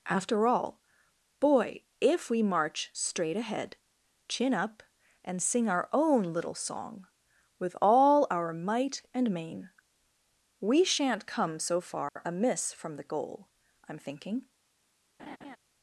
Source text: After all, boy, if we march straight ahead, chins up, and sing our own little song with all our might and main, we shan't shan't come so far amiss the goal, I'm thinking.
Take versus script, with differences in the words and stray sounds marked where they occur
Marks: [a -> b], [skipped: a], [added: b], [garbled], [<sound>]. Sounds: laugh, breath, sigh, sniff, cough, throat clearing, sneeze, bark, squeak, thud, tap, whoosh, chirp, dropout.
After all, boy, if we march straight ahead, [chins -> chin] up, and sing our own little song with all our might and main, we shan't [skipped: shan't] come so far [dropout] amiss [added: from] the goal, I'm thinking. [laugh]